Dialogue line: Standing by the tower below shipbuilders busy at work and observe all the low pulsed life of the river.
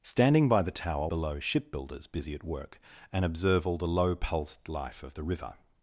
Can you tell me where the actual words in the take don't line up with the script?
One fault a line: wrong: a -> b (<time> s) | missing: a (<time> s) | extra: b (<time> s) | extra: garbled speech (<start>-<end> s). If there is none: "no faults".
no faults